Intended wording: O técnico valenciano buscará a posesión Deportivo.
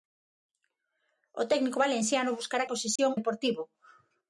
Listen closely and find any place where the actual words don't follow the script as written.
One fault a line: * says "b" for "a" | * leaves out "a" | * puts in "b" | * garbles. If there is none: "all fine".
all fine